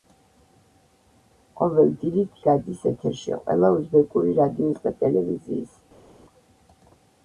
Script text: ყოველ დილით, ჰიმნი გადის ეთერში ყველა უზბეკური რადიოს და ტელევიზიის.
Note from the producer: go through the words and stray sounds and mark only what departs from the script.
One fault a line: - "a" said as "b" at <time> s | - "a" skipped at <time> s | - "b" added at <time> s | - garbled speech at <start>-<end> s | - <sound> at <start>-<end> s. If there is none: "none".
- "ჰიმნი" skipped at 2.4 s